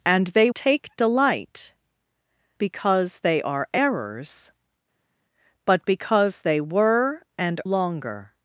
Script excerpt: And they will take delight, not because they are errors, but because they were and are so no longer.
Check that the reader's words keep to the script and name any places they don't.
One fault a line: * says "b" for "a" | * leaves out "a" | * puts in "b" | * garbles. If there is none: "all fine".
* leaves out "will"
* leaves out "not"
* leaves out "are so no"